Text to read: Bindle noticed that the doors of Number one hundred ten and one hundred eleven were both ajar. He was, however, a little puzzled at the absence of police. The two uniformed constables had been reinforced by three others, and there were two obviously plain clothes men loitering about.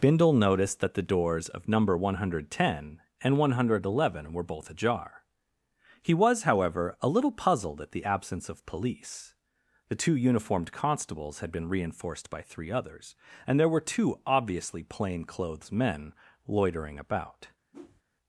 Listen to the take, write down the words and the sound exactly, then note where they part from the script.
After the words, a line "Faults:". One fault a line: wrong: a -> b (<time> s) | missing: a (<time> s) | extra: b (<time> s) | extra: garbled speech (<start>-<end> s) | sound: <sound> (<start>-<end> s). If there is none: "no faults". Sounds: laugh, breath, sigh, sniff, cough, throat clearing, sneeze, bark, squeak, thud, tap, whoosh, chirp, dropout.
Bindle noticed that the doors of Number one hundred ten and one hundred eleven were both ajar. He was, however, a little puzzled at the absence of police. The two uniformed constables had been reinforced by three others, and there were two obviously plain clothes men loitering about.
Faults:
sound: whoosh (17.7-18.0 s)